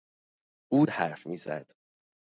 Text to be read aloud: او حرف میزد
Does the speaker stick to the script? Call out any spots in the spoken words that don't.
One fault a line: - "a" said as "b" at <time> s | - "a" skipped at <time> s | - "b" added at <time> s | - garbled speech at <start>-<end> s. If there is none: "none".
none